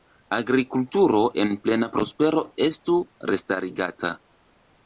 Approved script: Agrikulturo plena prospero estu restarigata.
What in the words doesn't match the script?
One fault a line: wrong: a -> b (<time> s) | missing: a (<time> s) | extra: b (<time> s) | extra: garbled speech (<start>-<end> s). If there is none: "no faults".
extra: en (1.4 s)